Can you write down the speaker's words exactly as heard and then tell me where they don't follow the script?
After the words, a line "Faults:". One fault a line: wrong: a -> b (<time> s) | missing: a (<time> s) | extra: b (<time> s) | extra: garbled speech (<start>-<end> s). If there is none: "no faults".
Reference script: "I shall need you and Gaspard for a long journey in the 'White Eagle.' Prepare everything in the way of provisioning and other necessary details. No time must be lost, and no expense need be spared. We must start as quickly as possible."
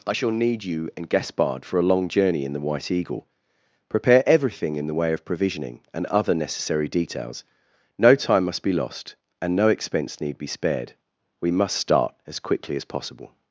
"I shall need you and Gaspard for a long journey in the 'White Eagle.' Prepare everything in the way of provisioning and other necessary details. No time must be lost, and no expense need be spared. We must start as quickly as possible."
Faults:
no faults